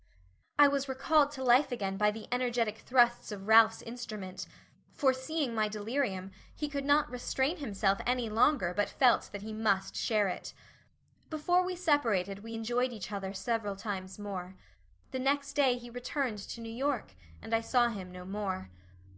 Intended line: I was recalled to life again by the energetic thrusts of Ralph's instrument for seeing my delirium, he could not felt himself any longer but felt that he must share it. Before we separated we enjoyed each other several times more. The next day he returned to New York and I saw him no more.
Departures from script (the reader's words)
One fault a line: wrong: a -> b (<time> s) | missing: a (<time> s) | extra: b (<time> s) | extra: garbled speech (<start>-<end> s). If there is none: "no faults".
wrong: felt -> restrain (7.1 s)